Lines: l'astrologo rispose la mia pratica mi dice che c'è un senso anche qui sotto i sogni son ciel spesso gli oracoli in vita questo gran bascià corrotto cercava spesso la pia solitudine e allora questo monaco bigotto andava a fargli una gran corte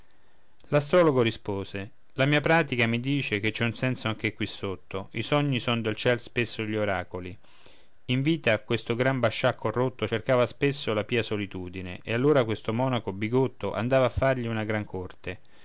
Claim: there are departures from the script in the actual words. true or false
true